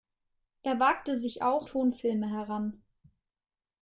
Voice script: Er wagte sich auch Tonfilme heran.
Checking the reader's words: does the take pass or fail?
pass